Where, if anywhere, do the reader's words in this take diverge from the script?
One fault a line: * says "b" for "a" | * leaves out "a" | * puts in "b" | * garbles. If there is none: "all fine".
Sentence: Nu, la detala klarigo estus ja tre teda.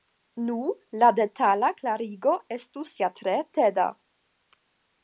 all fine